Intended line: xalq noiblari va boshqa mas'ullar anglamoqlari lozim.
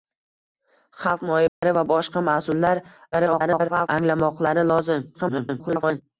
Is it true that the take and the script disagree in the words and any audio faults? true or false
true